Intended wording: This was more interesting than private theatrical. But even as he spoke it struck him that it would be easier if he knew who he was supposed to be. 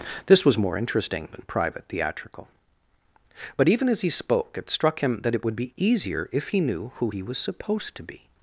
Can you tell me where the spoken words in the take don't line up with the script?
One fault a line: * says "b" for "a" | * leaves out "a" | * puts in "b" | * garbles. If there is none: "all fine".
all fine